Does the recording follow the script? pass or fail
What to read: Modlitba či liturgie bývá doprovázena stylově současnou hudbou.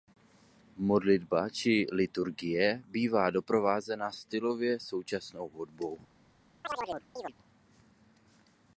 pass